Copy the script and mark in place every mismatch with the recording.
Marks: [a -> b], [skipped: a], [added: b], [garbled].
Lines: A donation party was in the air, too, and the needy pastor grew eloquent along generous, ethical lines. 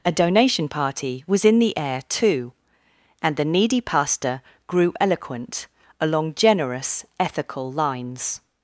A donation party was in the air, too, and the needy pastor grew eloquent along generous, ethical lines.